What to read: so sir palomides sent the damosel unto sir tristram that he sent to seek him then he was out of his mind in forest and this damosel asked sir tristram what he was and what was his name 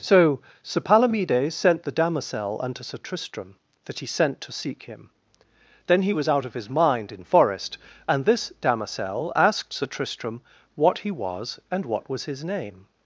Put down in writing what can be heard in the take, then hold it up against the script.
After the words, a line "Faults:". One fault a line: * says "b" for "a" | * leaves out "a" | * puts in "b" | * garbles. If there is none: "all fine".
so sir palomides sent the damosel unto sir tristram that he sent to seek him then he was out of his mind in forest and this damosel asked sir tristram what he was and what was his name
Faults:
all fine